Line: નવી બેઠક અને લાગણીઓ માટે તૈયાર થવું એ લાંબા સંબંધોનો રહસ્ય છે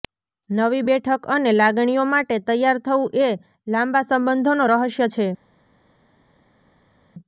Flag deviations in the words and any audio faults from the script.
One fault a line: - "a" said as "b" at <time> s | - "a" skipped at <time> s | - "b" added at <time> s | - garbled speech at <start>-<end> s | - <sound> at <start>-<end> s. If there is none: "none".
none